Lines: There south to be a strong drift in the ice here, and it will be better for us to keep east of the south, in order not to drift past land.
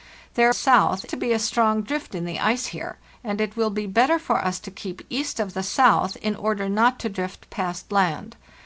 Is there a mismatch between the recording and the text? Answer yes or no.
no